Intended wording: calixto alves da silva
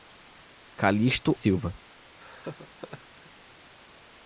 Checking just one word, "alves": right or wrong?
wrong